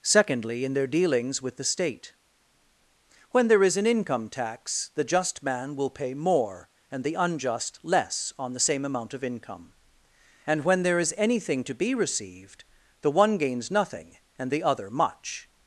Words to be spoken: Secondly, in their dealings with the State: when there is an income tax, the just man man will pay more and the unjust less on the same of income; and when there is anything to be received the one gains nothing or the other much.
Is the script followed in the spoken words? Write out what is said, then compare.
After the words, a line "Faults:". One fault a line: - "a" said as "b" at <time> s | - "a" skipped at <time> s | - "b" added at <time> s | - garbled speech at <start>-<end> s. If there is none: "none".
Secondly, in their dealings with the State: when there is an income tax, the just man will pay more and the unjust less on the same amount of income; and when there is anything to be received the one gains nothing and the other much.
Faults:
- "man" skipped at 5.8 s
- "amount" added at 8.8 s
- "or" said as "and" at 14.4 s